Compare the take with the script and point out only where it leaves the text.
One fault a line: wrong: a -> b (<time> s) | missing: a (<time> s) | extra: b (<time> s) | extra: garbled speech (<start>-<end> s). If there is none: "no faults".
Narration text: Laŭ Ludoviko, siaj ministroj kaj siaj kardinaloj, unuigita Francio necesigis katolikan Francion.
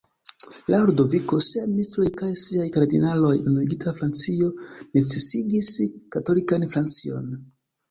no faults